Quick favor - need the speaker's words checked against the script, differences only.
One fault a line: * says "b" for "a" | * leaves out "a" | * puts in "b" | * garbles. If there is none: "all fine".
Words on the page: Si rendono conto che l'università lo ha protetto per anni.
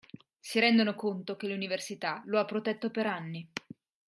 all fine